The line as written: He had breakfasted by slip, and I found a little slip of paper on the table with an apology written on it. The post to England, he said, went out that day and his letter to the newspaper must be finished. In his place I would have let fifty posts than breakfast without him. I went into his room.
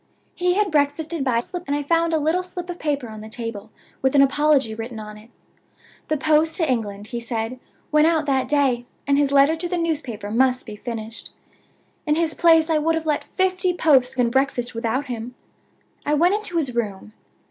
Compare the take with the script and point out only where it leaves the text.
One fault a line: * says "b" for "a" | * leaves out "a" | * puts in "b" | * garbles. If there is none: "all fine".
all fine